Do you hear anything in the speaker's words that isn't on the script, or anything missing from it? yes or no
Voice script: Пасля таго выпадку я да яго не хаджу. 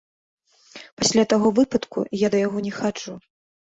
no